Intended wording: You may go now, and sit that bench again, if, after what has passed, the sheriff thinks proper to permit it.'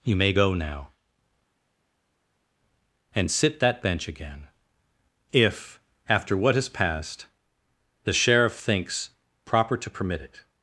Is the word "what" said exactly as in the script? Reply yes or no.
yes